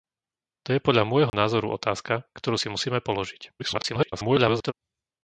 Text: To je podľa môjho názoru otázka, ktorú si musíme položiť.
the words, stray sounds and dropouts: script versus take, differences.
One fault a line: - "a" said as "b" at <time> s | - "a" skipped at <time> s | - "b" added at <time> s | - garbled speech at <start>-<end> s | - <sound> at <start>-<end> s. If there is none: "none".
- dropout at 1.3-1.3 s
- garbled speech at 3.6-4.7 s